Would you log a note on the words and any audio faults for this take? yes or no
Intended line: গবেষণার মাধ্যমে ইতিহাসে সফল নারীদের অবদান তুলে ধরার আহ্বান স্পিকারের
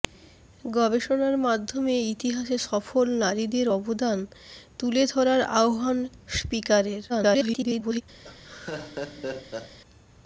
yes